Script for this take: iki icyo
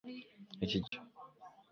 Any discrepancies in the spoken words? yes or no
no